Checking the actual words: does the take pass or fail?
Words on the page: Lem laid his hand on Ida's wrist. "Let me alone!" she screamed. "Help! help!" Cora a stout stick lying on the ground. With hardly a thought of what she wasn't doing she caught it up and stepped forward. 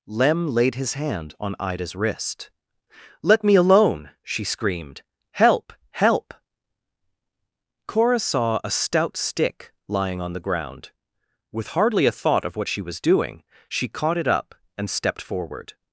fail